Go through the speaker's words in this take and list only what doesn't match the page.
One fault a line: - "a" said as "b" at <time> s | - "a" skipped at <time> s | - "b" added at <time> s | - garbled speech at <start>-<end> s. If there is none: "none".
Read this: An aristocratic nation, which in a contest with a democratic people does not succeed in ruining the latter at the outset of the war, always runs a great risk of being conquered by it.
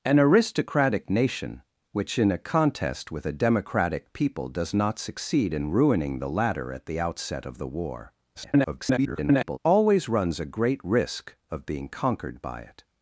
- garbled speech at 8.3-9.6 s